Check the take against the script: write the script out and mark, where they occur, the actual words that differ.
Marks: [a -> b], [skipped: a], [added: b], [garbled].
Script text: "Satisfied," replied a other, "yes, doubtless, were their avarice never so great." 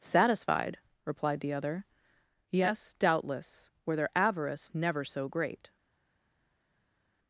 "Satisfied," replied [a -> the] other, "yes, doubtless, were their avarice never so great."